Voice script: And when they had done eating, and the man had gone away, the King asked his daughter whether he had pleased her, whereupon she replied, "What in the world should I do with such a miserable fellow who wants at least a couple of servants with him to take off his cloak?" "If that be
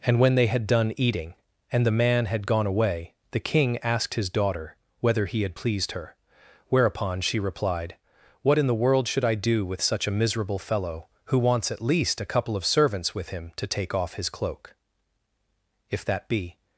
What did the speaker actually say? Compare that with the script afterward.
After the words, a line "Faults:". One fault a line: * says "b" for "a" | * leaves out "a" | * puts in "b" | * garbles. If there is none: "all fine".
And when they had done eating, and the man had gone away, the King asked his daughter whether he had pleased her, whereupon she replied, "What in the world should I do with such a miserable fellow who wants at least a couple of servants with him to take off his cloak?" "If that be
Faults:
all fine